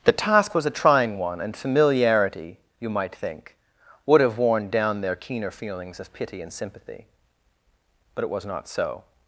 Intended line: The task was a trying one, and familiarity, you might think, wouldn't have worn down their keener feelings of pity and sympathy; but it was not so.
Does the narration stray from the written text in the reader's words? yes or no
yes